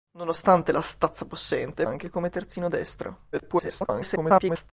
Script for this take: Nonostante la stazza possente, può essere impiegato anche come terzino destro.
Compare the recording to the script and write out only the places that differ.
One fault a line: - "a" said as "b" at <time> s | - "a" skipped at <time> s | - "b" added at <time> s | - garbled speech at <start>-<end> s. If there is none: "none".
- "può essere impiegato" skipped at 1.9 s
- garbled speech at 3.3-4.7 s